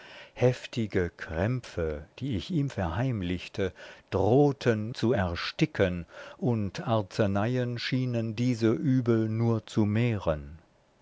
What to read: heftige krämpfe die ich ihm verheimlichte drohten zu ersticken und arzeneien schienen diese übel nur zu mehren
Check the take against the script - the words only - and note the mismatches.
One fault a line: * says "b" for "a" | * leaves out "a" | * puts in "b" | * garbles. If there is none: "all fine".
all fine